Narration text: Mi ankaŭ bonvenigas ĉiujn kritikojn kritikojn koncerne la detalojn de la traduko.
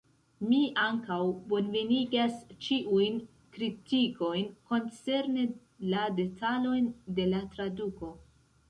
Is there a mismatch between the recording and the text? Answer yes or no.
yes